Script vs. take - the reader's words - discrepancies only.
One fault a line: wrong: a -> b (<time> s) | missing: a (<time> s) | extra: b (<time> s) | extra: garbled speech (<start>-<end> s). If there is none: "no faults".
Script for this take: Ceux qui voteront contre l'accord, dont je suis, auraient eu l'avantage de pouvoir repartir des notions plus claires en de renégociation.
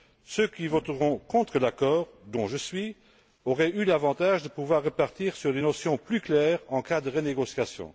extra: sur (5.3 s)
extra: cas (6.8 s)